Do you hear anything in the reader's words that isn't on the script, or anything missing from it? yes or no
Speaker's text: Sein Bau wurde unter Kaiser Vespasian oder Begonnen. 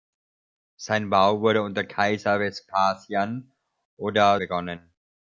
no